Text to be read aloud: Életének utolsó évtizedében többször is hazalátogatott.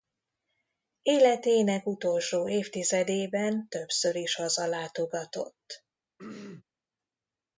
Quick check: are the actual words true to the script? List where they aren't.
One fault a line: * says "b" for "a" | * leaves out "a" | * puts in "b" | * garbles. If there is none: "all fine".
all fine